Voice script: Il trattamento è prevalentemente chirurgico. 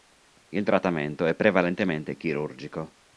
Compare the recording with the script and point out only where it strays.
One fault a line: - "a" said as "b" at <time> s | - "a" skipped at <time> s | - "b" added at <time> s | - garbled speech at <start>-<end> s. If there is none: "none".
none